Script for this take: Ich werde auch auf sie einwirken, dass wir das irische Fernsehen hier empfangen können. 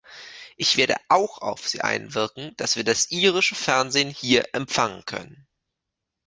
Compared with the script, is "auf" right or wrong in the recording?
right